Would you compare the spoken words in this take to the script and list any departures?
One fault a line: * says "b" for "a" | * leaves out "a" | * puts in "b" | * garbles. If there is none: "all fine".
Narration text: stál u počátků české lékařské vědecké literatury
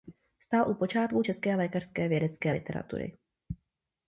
all fine